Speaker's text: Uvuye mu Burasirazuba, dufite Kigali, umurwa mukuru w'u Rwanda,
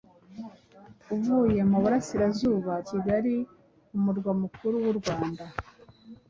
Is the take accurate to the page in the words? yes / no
no